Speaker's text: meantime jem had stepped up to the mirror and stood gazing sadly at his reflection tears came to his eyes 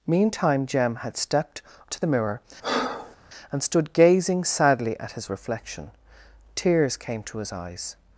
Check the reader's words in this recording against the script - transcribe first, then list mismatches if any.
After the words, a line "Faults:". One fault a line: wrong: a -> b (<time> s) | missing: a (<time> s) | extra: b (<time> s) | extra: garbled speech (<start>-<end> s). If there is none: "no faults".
meantime jem had stepped to the mirror and stood gazing sadly at his reflection tears came to his eyes
Faults:
missing: up (1.6 s)